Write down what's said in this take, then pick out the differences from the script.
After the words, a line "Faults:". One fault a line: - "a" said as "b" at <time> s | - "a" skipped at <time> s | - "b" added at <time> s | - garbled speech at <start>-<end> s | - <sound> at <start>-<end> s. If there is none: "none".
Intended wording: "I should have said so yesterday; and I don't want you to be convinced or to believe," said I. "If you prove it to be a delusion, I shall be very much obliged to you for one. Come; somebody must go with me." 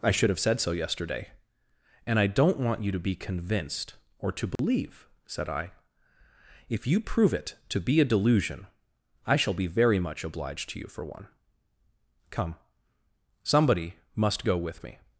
"I should have said so yesterday; and I don't want you to be convinced or to believe," said I. "If you prove it to be a delusion, I shall be very much obliged to you for one. Come; somebody must go with me."
Faults:
- dropout at 4.6-4.6 s